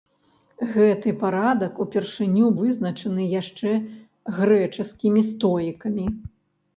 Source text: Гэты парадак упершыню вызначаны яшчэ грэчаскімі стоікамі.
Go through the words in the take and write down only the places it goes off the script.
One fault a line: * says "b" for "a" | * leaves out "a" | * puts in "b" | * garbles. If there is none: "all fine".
all fine